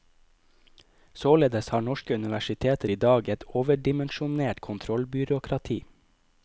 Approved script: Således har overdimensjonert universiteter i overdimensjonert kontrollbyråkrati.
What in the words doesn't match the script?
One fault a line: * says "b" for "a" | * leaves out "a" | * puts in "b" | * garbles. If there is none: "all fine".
* says "norske" for "overdimensjonert"
* puts in "dag et"